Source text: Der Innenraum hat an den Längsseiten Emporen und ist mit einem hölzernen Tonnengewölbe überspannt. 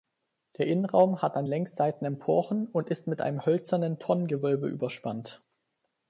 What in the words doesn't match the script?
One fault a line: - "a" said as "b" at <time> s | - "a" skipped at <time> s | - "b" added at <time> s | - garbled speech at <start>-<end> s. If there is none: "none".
- "den" skipped at 1.4 s